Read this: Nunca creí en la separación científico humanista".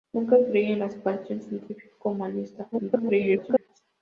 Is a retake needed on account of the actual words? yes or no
yes